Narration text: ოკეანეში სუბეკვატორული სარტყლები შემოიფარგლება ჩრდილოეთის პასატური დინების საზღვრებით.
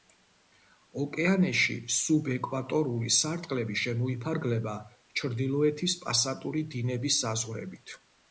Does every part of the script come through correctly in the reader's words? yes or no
yes